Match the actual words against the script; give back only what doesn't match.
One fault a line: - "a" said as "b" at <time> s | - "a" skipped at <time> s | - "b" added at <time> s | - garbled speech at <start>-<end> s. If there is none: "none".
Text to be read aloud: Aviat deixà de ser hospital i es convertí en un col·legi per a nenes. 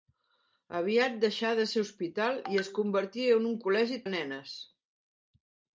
- "per" skipped at 4.0 s